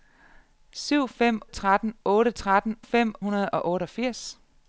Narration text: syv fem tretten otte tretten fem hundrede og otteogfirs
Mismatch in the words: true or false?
false